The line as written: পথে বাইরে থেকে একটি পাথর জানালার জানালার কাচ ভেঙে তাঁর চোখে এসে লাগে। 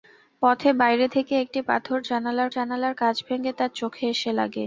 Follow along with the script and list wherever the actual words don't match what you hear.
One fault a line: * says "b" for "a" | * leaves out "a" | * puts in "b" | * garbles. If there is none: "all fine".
all fine